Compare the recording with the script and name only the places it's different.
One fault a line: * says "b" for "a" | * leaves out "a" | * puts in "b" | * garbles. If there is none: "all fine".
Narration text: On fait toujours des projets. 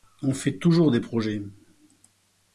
all fine